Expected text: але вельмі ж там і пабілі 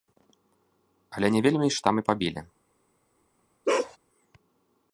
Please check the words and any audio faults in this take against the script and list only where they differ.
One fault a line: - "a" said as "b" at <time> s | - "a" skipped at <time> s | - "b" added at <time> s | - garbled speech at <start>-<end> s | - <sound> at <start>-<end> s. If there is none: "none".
- "не" added at 1.3 s
- bark at 3.7-4.0 s